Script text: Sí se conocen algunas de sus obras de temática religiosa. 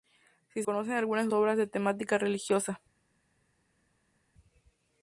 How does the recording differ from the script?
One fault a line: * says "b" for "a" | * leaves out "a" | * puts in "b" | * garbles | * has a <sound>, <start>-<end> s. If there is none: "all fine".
* leaves out "se"
* leaves out "sus"